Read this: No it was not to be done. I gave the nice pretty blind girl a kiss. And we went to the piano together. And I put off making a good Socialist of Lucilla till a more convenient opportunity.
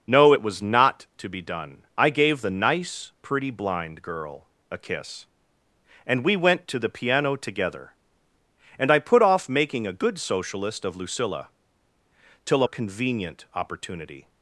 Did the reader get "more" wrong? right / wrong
wrong